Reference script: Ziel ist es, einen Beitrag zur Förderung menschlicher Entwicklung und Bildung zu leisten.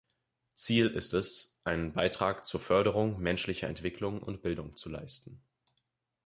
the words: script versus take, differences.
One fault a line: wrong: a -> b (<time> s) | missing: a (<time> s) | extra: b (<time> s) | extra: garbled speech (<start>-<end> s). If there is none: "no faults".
no faults